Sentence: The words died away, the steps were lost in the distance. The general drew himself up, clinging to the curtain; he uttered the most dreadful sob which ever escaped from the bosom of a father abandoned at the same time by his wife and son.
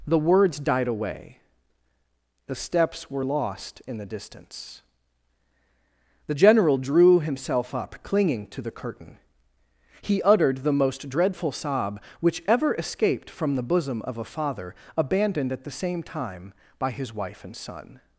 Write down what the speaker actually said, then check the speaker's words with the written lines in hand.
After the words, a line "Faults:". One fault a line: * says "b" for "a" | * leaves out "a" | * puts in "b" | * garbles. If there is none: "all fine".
The words died away, the steps were lost in the distance. The general drew himself up, clinging to the curtain; he uttered the most dreadful sob which ever escaped from the bosom of a father abandoned at the same time by his wife and son.
Faults:
all fine